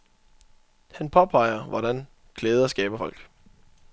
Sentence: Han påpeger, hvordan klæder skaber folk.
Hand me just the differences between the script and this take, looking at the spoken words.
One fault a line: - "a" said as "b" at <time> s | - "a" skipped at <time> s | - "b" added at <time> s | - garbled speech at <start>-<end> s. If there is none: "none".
none